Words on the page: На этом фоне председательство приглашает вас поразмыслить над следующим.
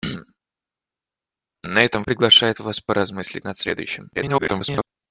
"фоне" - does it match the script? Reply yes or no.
no